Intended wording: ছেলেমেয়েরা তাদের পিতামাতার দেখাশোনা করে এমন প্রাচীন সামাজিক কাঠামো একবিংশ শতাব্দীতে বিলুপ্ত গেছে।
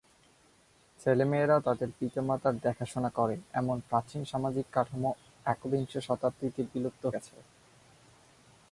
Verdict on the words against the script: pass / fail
pass